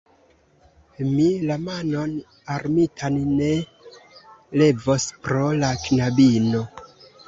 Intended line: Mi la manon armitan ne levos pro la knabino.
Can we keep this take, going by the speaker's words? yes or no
yes